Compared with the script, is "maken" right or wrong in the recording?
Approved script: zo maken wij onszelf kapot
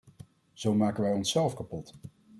right